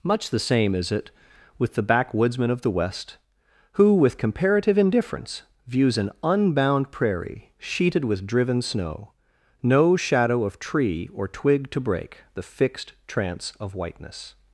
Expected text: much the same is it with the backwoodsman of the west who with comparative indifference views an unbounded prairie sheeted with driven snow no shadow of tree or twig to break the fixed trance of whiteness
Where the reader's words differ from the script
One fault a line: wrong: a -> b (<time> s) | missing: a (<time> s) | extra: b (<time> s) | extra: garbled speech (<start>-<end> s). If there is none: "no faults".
wrong: unbounded -> unbound (6.2 s)